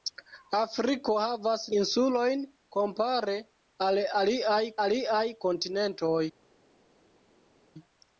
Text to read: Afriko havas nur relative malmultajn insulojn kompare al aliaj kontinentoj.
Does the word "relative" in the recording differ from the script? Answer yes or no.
yes